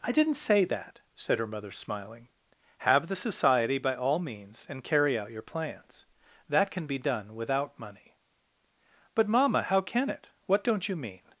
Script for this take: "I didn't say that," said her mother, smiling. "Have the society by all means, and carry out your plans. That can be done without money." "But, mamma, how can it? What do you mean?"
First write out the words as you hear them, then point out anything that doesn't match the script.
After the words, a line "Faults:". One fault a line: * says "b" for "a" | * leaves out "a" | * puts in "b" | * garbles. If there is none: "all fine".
"I didn't say that," said her mother, smiling. "Have the society by all means, and carry out your plans. That can be done without money." "But, mamma, how can it? What don't you mean?"
Faults:
* says "don't" for "do"